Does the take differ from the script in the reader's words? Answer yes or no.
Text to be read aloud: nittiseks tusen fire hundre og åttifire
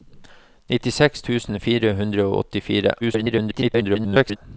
yes